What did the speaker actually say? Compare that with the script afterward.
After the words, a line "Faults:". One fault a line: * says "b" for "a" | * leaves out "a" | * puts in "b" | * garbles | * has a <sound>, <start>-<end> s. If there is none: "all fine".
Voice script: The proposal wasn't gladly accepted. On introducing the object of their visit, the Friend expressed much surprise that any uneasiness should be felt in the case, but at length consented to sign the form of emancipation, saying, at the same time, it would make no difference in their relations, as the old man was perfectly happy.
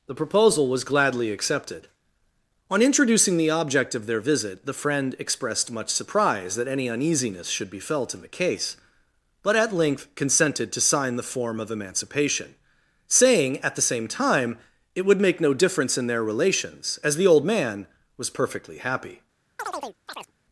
The proposal was gladly accepted. On introducing the object of their visit, the Friend expressed much surprise that any uneasiness should be felt in the case, but at length consented to sign the form of emancipation, saying, at the same time, it would make no difference in their relations, as the old man was perfectly happy.
Faults:
* says "was" for "wasn't"
* has a chirp, 19.6-20.3 s